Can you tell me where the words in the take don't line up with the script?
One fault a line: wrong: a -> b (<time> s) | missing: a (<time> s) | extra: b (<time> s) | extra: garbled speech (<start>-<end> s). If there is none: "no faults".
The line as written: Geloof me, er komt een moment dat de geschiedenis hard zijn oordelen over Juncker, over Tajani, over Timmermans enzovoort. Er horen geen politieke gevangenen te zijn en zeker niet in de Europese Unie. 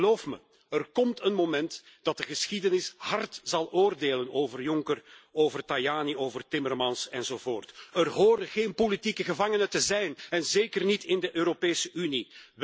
wrong: zijn -> zal (3.4 s)